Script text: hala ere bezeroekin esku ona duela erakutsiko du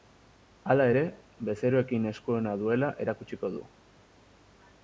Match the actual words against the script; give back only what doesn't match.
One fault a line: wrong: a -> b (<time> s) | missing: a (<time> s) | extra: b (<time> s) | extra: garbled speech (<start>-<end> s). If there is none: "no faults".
no faults